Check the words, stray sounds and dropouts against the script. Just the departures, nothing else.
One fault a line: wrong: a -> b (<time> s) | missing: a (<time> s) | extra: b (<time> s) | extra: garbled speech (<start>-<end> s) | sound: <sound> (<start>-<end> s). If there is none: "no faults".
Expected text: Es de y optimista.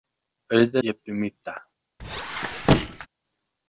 sound: squeak (2.0-3.1 s)